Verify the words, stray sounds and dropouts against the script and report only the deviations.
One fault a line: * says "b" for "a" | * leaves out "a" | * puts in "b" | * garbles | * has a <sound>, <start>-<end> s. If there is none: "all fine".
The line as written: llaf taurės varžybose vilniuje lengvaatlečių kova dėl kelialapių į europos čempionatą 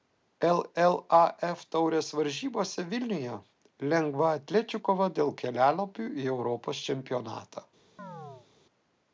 * has a chirp, 8.0-8.5 s